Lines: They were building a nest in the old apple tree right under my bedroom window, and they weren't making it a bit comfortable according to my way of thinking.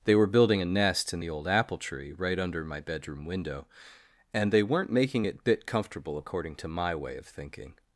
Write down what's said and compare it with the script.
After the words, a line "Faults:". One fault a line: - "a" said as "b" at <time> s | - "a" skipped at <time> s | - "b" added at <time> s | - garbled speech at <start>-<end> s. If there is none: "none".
They were building a nest in the old apple tree right under my bedroom window, and they weren't making it bit comfortable according to my way of thinking.
Faults:
- "a" skipped at 5.4 s